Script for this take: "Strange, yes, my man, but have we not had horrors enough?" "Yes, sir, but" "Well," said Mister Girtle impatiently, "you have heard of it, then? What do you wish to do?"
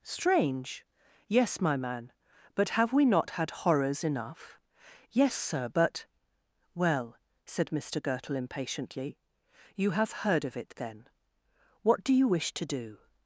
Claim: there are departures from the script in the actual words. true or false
false